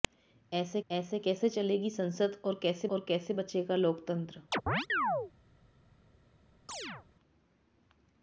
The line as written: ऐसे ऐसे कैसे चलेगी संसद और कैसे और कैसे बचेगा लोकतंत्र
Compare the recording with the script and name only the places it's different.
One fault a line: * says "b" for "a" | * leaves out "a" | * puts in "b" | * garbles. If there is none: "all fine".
all fine